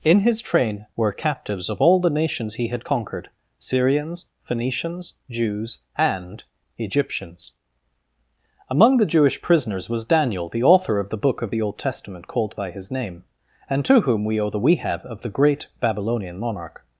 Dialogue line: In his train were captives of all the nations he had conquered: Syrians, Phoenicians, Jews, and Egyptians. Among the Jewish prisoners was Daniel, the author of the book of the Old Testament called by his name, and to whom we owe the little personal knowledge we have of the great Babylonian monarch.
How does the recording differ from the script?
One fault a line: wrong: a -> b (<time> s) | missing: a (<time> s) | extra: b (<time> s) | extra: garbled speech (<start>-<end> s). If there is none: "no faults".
missing: little personal knowledge (14.6 s)